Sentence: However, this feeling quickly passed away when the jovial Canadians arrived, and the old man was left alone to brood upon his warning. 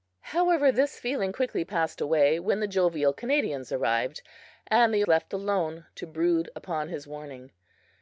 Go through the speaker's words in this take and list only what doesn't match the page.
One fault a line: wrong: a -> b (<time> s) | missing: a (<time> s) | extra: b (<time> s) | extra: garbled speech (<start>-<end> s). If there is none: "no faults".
missing: old man was (5.0 s)